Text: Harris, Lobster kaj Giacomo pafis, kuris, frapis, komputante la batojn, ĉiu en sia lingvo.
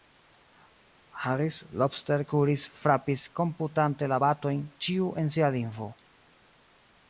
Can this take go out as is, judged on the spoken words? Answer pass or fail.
fail